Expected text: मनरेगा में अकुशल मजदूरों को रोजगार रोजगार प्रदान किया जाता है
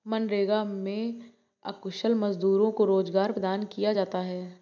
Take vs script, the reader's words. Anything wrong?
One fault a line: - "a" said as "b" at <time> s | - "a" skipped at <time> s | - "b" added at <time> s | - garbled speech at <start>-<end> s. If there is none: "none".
- "रोजगार" skipped at 3.3 s